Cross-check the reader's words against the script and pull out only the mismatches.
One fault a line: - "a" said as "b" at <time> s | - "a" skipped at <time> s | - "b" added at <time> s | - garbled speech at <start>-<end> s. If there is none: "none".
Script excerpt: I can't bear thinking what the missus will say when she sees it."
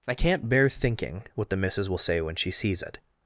none